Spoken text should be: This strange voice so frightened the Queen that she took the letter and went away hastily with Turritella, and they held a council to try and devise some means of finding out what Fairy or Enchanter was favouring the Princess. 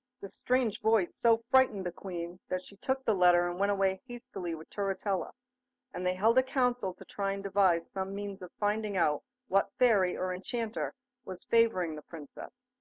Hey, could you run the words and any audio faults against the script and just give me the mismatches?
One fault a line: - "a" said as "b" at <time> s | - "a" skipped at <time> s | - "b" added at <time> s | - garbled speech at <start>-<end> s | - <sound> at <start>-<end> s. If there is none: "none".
none